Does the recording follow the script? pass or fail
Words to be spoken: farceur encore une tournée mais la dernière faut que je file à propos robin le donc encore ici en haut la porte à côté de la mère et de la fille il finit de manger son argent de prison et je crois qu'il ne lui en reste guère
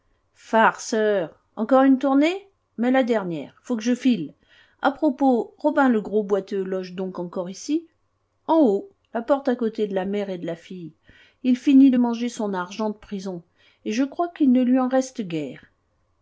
fail